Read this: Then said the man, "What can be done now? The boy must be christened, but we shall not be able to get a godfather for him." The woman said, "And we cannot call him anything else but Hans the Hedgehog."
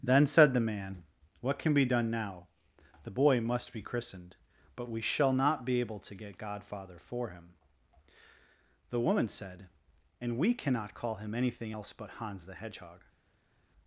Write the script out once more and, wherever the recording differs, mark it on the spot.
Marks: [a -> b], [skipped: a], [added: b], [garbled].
Then said the man, "What can be done now? The boy must be christened, but we shall not be able to get [skipped: a] godfather for him." The woman said, "And we cannot call him anything else but Hans the Hedgehog."